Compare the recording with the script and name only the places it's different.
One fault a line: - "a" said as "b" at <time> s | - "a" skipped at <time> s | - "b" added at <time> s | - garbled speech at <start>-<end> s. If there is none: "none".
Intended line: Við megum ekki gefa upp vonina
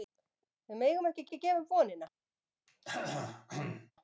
- "ekki" added at 1.3 s